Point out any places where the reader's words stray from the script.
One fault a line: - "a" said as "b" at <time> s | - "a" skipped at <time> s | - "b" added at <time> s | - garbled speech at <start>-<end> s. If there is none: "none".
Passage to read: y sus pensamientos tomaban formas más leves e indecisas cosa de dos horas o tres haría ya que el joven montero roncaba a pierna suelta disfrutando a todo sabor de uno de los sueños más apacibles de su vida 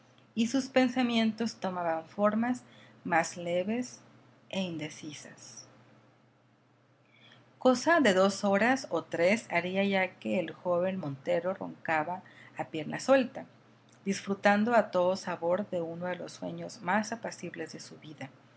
none